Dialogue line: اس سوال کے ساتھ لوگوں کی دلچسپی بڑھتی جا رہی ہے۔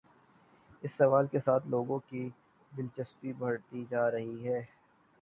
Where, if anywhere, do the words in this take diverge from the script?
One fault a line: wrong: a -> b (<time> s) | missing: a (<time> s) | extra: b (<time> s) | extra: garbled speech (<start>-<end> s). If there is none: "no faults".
no faults